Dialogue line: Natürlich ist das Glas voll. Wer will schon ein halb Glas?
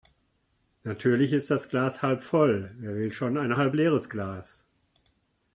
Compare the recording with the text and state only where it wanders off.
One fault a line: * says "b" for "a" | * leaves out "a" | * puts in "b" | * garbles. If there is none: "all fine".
* puts in "halb"
* puts in "leeres"